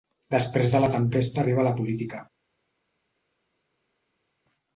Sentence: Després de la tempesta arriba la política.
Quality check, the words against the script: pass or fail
pass